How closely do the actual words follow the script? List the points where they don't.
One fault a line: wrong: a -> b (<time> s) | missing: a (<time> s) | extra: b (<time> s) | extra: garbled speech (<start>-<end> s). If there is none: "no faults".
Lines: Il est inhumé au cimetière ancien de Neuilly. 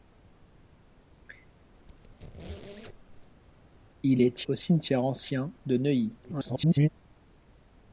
missing: inhumé (4.5 s)
extra: garbled speech (6.2-6.9 s)